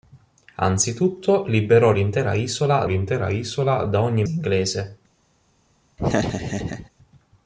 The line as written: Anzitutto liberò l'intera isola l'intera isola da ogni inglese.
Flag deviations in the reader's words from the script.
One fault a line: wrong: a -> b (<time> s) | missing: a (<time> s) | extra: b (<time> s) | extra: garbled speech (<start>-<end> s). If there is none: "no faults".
no faults